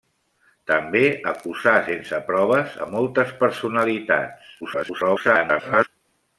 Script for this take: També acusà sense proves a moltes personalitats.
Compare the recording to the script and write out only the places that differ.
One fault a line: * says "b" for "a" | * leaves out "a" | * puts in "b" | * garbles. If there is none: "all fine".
* garbles